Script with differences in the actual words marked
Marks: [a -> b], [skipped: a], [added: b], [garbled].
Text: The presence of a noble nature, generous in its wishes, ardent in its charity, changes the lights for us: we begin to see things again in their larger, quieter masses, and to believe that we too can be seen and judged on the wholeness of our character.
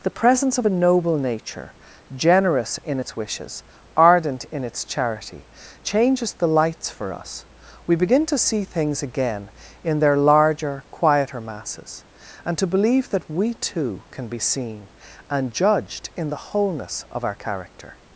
The presence of a noble nature, generous in its wishes, ardent in its charity, changes the lights for us: we begin to see things again in their larger, quieter masses, and to believe that we too can be seen and judged [on -> in] the wholeness of our character.